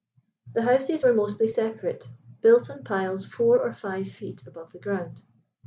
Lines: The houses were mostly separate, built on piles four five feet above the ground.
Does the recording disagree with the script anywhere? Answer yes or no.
yes